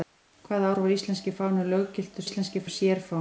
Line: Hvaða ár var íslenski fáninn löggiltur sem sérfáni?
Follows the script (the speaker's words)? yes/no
no